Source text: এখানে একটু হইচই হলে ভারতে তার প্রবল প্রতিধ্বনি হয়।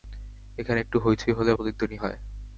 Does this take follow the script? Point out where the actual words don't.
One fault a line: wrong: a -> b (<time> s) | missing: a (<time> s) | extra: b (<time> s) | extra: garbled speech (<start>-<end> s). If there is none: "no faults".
missing: ভারতে তার প্রবল (1.5 s)